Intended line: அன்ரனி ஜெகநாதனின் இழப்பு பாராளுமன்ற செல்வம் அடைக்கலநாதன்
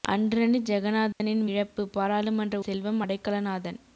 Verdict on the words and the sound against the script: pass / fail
fail